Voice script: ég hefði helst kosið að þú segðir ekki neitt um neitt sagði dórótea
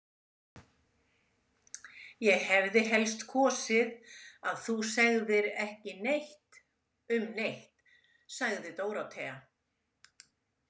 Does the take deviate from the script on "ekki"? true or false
false